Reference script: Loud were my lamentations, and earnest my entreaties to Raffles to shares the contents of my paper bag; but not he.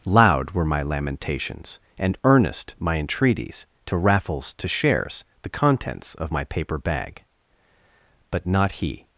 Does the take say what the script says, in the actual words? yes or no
yes